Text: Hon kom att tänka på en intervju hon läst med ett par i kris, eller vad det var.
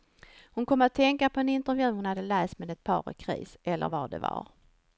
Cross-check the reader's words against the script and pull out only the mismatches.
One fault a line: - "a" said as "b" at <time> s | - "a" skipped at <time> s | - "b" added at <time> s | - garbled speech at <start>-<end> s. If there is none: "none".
- "hade" added at 2.0 s